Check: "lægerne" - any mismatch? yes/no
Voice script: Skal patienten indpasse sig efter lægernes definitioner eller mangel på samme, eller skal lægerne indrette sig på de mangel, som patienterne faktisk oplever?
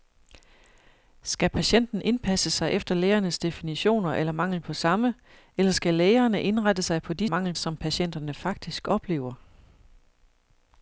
no